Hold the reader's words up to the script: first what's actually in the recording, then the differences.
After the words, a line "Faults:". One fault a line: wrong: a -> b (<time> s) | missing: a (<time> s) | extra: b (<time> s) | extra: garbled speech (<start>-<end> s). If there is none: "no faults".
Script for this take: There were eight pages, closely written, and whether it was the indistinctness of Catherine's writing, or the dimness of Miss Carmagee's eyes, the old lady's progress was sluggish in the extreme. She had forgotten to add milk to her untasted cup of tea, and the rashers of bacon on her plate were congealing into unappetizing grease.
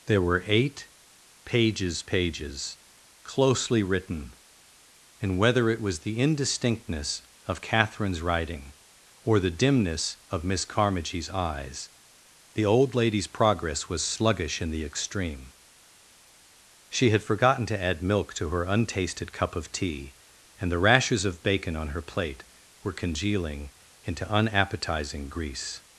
There were eight pages pages, closely written, and whether it was the indistinctness of Catherine's writing, or the dimness of Miss Carmagee's eyes, the old lady's progress was sluggish in the extreme. She had forgotten to add milk to her untasted cup of tea, and the rashers of bacon on her plate were congealing into unappetizing grease.
Faults:
extra: pages (2.0 s)